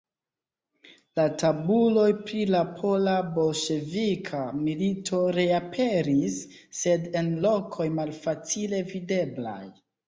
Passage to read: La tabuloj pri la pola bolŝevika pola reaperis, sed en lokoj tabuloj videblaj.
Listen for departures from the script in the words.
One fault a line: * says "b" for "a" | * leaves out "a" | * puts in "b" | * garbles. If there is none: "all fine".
* says "milito" for "pola"
* says "malfacile" for "tabuloj"